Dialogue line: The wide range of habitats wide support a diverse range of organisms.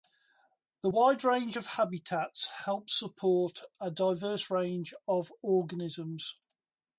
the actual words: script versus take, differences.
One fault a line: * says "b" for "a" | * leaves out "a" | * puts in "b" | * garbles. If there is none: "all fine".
* says "help" for "wide"